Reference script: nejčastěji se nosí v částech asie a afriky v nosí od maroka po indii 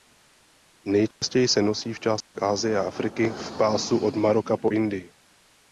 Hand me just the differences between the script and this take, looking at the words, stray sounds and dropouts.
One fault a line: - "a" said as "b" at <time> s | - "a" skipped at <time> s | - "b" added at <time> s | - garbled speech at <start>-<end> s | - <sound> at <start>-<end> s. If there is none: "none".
- dropout at 1.1-1.2 s
- dropout at 2.2-2.3 s
- "nosí" said as "pásu" at 3.6 s